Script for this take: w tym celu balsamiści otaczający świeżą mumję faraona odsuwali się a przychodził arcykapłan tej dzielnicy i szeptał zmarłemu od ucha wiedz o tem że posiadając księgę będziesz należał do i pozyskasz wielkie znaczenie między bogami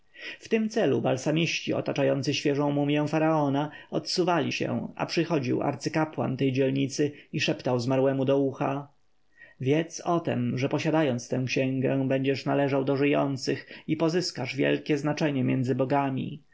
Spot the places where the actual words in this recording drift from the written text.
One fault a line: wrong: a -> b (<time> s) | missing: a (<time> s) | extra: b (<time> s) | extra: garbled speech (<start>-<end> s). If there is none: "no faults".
wrong: od -> do (8.2 s)
extra: tę (11.3 s)
extra: żyjących (13.0 s)